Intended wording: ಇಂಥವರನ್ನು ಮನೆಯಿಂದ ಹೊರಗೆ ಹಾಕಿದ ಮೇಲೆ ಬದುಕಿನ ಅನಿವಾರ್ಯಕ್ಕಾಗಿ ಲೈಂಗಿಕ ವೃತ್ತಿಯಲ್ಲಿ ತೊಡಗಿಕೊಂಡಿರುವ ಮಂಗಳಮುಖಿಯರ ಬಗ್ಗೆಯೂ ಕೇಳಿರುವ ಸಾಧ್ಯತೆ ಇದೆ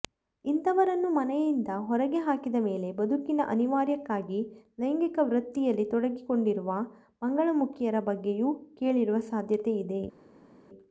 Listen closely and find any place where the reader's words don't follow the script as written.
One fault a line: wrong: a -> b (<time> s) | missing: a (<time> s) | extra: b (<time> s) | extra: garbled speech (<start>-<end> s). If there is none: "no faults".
no faults